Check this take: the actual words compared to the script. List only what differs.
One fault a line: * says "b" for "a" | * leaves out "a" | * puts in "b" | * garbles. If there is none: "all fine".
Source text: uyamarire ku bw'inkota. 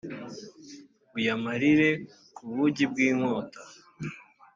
* puts in "bugi"